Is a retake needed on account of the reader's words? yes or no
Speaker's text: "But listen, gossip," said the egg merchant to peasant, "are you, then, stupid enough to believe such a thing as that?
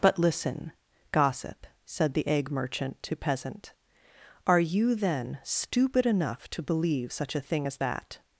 no